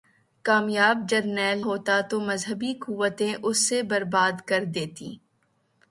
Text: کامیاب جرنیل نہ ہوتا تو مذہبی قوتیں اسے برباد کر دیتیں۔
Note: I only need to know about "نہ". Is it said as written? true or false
false